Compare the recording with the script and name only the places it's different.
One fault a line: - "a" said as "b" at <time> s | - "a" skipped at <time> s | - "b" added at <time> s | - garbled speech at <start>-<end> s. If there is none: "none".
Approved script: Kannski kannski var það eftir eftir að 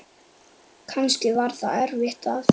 - "kannski" skipped at 1.3 s
- "eftir" skipped at 2.3 s